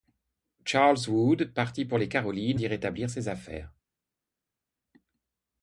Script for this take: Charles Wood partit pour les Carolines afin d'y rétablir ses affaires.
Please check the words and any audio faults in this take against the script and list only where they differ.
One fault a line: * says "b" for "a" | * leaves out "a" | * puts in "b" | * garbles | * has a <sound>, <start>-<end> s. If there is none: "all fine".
* leaves out "afin"